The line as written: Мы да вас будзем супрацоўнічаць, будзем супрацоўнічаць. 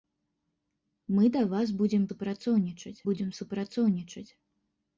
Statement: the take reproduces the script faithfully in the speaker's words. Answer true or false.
true